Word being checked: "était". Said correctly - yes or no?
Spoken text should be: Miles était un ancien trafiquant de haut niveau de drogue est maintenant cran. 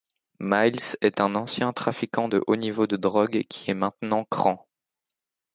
no